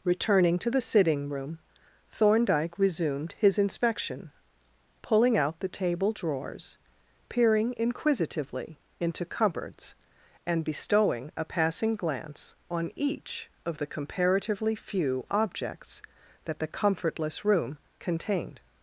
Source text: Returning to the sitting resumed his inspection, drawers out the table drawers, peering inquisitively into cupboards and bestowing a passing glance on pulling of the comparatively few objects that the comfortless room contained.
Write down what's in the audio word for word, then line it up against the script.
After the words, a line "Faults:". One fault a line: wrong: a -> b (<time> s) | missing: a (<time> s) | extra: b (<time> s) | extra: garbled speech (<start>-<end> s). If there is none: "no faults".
Returning to the sitting room, Thorndyke resumed his inspection, pulling out the table drawers, peering inquisitively into cupboards and bestowing a passing glance on each of the comparatively few objects that the comfortless room contained.
Faults:
extra: room Thorndyke (1.3 s)
wrong: drawers -> pulling (5.0 s)
wrong: pulling -> each (12.9 s)